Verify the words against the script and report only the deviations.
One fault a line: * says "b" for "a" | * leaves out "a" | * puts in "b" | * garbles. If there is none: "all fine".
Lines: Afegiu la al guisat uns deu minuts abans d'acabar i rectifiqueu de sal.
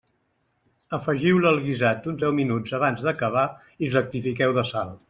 all fine